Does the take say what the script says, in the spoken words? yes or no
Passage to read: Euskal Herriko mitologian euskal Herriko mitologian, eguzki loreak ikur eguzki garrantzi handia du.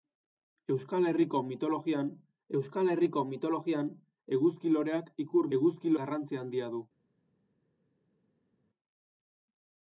yes